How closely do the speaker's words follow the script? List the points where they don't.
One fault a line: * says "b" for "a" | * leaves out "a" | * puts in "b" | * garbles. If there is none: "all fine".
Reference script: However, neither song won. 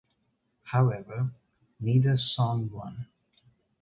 all fine